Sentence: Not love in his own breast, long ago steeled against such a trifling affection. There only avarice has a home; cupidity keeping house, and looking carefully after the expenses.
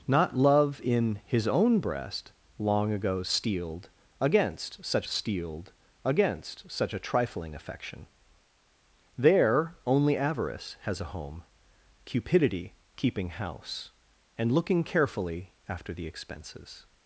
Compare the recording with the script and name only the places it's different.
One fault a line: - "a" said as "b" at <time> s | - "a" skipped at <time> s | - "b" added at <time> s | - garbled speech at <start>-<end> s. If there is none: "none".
- "steeled against such" added at 5.0 s